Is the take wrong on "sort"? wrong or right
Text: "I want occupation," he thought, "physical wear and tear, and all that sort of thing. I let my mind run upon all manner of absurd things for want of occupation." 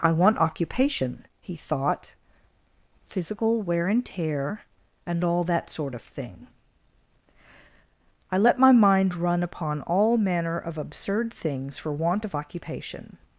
right